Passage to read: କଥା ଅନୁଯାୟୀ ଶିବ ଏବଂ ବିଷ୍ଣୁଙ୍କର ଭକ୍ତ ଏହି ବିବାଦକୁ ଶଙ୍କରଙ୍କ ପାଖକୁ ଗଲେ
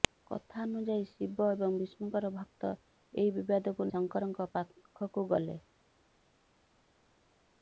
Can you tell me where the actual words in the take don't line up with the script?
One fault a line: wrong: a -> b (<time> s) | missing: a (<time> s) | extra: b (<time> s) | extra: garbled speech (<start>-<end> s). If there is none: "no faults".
no faults